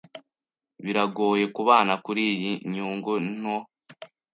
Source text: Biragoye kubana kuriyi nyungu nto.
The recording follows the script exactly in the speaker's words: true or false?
true